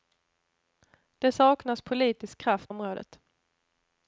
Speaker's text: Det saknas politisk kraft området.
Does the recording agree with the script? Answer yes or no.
yes